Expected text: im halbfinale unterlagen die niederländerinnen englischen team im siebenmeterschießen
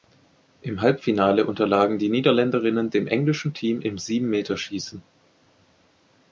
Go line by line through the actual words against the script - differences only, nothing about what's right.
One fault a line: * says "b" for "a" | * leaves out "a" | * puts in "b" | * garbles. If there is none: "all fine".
* puts in "dem"